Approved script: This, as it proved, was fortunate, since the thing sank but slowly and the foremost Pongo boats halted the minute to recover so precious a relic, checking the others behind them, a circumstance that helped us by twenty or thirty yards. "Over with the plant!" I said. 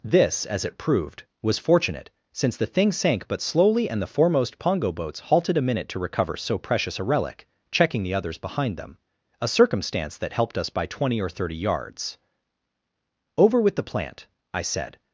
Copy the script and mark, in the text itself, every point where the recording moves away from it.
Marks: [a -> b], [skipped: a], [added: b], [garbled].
This, as it proved, was fortunate, since the thing sank but slowly and the foremost Pongo boats halted [the -> a] minute to recover so precious a relic, checking the others behind them, a circumstance that helped us by twenty or thirty yards. "Over with the plant!" I said.